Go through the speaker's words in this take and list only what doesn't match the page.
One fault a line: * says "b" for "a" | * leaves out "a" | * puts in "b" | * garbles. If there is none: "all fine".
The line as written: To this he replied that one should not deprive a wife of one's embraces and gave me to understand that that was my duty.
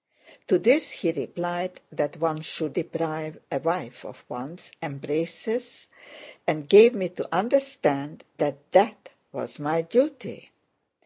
* leaves out "not"